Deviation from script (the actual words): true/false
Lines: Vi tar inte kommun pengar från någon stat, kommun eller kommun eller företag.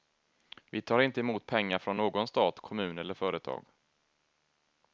true